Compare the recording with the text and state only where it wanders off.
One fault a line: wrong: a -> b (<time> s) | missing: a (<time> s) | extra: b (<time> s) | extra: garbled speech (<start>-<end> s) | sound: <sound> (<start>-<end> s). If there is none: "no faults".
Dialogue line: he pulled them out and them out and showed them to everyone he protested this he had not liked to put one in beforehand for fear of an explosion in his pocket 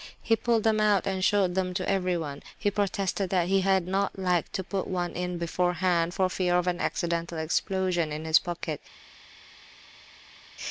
missing: them out and (1.2 s)
wrong: this -> that (3.3 s)
extra: accidental (6.8 s)